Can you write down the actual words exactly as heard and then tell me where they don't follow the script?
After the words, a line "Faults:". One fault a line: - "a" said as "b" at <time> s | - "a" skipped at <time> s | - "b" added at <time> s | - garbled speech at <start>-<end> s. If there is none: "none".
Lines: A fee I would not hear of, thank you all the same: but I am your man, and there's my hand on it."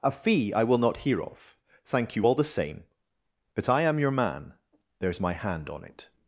A fee I will not hear of, thank you all the same: but I am your man, there's my hand on it."
Faults:
- "would" said as "will" at 0.6 s
- "and" skipped at 4.5 s